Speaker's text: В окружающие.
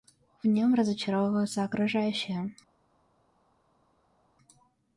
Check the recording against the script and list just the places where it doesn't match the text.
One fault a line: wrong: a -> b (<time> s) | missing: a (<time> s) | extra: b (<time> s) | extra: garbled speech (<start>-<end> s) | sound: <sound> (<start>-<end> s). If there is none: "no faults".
extra: нем разочаровываются (0.5 s)